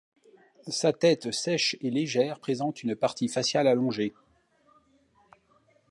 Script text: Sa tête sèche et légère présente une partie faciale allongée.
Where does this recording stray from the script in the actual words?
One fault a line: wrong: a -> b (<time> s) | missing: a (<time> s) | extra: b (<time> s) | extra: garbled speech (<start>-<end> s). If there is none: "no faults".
no faults